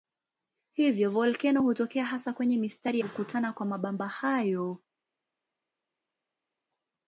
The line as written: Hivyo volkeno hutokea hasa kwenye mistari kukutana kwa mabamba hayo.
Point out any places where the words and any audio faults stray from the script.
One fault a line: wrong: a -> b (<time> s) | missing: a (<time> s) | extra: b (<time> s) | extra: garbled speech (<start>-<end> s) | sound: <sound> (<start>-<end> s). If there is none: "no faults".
no faults